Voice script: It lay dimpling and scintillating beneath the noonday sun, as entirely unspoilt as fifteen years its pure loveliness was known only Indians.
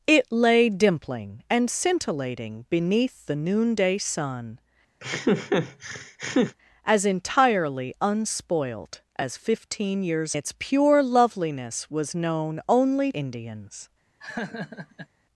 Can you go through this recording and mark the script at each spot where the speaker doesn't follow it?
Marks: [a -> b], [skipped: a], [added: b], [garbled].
It lay dimpling and scintillating beneath the noonday sun, as entirely unspoilt as fifteen years its pure loveliness was known only Indians.